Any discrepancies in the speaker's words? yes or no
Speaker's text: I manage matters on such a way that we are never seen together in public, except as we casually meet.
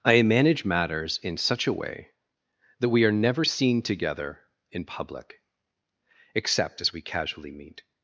yes